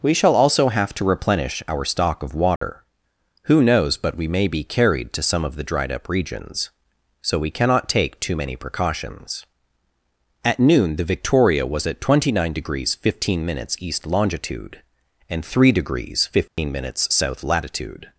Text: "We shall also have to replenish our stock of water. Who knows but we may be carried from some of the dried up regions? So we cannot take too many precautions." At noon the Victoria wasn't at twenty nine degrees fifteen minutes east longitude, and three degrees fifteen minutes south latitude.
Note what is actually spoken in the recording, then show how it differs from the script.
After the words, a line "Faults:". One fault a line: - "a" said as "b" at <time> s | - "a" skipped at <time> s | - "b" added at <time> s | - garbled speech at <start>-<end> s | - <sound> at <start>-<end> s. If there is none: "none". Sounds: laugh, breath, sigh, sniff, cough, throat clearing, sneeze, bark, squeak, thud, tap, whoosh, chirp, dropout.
"We shall also have to replenish our stock of water. Who knows but we may be carried to some of the dried up regions? So we cannot take too many precautions." At noon the Victoria was at twenty nine degrees fifteen minutes east longitude, and three degrees fifteen minutes south latitude.
Faults:
- dropout at 2.6-2.6 s
- "from" said as "to" at 5.1 s
- "wasn't" said as "was" at 11.7 s
- dropout at 16.5-16.6 s